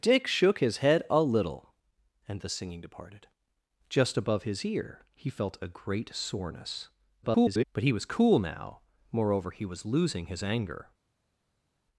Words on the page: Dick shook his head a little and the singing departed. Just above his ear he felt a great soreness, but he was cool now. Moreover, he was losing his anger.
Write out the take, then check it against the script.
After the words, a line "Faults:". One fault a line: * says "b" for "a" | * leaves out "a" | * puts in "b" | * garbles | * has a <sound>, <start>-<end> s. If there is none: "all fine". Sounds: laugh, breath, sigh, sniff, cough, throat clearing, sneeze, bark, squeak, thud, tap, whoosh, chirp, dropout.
Dick shook his head a little and the singing departed. Just above his ear he felt a great soreness, [garbled] but he was cool now. Moreover, he was losing his anger.
Faults:
* garbles